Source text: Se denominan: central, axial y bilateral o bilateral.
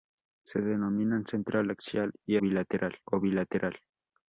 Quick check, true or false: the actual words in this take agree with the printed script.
true